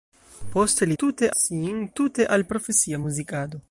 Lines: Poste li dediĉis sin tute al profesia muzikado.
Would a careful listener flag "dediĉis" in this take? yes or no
yes